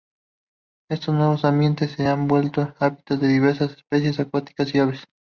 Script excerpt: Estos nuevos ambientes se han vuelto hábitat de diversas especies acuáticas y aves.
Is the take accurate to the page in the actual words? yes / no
yes